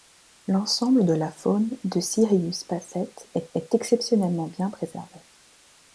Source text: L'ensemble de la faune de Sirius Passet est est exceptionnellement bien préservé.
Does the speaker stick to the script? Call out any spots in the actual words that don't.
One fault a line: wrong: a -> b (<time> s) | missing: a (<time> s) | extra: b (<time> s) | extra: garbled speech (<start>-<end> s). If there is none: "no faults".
no faults